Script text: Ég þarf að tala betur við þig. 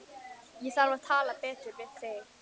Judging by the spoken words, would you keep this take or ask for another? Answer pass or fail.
pass